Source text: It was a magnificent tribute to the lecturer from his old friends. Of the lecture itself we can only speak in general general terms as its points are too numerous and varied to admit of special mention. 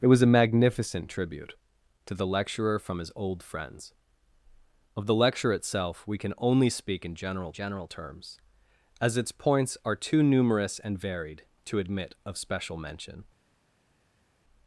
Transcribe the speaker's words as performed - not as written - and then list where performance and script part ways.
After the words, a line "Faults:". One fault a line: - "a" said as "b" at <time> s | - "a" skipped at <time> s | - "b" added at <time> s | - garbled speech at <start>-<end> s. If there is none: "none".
It was a magnificent tribute to the lecturer from his old friends. Of the lecture itself we can only speak in general general terms as its points are too numerous and varied to admit of special mention.
Faults:
none